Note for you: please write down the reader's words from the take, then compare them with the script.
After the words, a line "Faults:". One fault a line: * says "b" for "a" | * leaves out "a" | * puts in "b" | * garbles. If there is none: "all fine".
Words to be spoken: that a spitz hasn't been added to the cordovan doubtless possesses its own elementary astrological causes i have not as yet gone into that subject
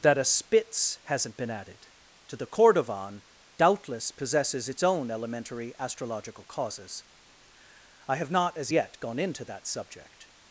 that a spitz hasn't been added to the cordovan doubtless possesses its own elementary astrological causes i have not as yet gone into that subject
Faults:
all fine